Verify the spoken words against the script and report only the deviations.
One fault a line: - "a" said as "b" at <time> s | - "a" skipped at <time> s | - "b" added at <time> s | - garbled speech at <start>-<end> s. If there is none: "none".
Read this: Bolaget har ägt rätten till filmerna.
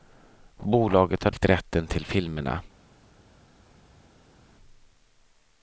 none